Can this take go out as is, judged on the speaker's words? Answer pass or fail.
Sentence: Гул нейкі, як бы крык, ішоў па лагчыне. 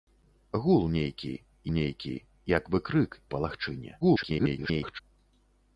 fail